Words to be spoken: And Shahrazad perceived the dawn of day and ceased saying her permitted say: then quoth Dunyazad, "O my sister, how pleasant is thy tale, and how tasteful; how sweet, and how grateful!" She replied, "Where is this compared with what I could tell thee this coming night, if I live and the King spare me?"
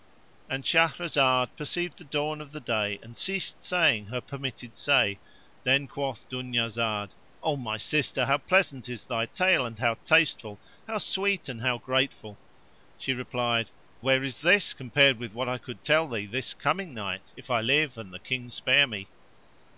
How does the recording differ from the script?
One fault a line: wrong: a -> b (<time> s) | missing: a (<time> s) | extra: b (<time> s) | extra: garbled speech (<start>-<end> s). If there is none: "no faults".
no faults